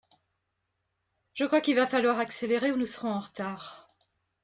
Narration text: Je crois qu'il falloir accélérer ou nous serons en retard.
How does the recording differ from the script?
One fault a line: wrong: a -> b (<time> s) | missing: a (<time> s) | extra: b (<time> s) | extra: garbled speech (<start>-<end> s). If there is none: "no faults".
extra: va (1.8 s)